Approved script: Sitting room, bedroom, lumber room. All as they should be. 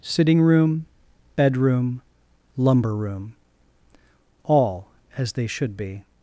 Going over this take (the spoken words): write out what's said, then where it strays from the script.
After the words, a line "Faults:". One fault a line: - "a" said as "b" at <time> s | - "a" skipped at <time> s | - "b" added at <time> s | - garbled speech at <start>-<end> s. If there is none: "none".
Sitting room, bedroom, lumber room. All as they should be.
Faults:
none